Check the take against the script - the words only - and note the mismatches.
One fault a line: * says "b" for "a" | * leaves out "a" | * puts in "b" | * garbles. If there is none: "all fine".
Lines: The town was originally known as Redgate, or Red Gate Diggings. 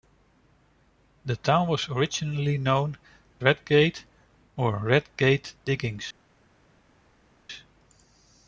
* leaves out "as"